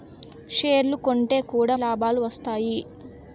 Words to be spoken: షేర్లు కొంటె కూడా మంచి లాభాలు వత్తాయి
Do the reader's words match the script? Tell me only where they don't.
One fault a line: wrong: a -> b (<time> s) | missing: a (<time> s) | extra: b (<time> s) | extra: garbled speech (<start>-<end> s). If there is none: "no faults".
missing: మంచి (1.8 s)